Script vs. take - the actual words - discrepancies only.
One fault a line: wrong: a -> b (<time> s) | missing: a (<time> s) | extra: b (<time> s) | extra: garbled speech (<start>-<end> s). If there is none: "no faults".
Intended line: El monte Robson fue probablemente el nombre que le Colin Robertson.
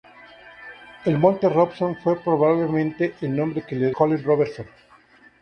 no faults